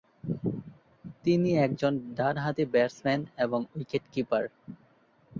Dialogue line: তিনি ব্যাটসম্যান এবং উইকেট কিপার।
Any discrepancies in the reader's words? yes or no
yes